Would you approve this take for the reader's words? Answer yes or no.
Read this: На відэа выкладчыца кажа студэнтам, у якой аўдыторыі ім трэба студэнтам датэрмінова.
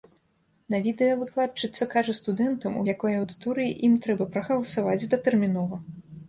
no